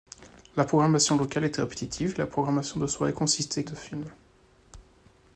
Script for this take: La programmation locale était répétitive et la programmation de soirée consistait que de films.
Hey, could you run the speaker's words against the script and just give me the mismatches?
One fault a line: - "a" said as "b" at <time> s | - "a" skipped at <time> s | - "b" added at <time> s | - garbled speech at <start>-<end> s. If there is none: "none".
- "que" skipped at 3.6 s